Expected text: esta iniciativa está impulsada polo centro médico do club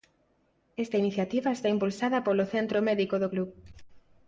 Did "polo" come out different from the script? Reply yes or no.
no